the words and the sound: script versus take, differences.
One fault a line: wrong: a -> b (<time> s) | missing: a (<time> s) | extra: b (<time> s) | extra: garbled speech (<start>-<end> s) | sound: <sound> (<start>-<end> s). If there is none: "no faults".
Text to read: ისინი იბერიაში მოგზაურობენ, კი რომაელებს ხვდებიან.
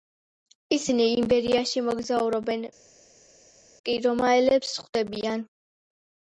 no faults